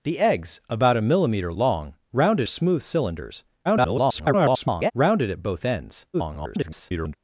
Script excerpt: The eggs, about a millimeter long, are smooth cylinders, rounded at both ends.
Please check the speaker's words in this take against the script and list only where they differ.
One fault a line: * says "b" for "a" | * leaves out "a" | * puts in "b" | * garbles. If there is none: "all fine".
* says "rounded" for "are"
* garbles
* garbles